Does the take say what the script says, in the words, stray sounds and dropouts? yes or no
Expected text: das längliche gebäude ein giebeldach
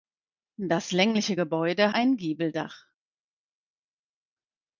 yes